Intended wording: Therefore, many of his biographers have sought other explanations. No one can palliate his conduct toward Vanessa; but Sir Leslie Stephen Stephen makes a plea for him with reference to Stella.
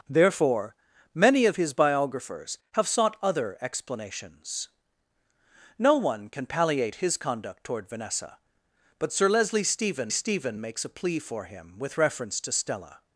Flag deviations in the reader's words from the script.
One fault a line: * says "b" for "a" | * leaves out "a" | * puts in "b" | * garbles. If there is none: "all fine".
all fine